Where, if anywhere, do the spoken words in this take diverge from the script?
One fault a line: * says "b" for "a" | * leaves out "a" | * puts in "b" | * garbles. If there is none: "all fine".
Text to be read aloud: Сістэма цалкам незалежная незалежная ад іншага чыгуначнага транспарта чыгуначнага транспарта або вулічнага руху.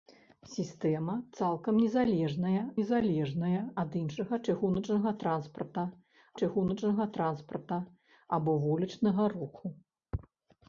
all fine